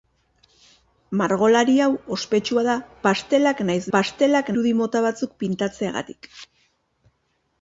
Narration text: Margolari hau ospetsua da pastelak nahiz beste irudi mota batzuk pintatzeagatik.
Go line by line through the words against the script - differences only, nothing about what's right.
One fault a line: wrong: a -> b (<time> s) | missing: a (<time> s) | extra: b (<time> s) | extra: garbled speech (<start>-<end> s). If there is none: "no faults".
wrong: beste -> pastelak (4.0 s)